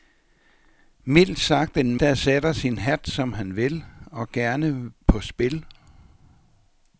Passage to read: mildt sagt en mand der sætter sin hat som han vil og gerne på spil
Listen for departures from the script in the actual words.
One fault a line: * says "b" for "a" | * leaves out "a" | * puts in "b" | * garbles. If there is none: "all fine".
* leaves out "mand"